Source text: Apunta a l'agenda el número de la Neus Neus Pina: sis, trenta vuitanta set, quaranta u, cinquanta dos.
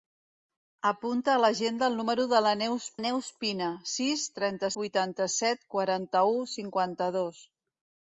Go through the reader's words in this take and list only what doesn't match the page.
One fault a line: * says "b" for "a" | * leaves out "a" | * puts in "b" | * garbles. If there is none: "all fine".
all fine